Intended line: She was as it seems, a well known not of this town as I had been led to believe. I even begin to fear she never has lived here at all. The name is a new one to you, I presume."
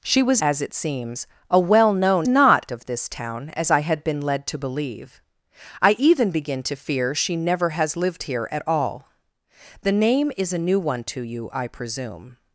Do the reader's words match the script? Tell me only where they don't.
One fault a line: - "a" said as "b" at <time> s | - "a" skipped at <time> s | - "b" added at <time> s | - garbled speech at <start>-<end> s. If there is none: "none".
none